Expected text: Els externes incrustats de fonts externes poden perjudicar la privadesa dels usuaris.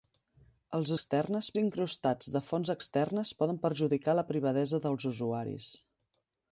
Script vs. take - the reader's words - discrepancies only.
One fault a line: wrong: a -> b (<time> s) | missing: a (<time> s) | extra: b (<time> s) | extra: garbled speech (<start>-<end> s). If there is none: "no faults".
no faults